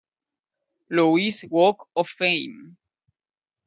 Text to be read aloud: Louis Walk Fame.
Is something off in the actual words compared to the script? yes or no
yes